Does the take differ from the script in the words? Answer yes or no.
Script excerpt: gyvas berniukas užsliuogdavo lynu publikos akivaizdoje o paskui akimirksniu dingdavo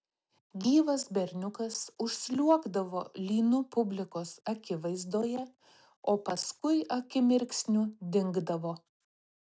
no